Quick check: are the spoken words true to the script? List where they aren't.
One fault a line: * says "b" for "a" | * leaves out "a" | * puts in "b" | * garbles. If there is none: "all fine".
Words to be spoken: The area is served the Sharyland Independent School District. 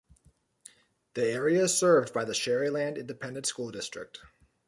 * puts in "by"